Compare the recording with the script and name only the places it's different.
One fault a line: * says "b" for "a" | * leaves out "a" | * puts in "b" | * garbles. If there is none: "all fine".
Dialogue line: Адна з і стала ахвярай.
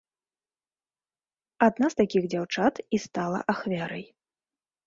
* puts in "такіх дзяўчат"